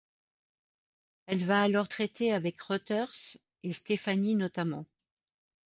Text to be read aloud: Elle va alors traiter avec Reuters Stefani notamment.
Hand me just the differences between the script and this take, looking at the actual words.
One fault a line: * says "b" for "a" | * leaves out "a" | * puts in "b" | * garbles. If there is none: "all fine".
* puts in "et"